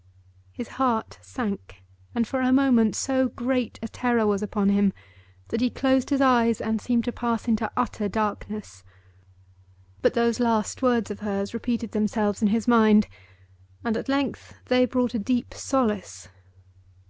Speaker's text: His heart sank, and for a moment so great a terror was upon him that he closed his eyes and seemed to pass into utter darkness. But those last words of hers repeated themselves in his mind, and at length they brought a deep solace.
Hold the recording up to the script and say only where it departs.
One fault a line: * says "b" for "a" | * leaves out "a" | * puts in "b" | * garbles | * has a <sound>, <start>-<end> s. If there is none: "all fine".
all fine